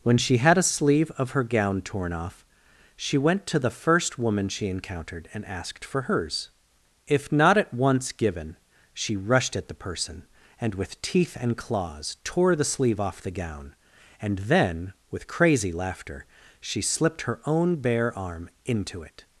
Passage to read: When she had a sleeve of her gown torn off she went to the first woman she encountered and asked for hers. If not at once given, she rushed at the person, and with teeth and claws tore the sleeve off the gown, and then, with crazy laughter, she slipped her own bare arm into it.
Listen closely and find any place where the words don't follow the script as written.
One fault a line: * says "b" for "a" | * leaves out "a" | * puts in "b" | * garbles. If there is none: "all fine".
all fine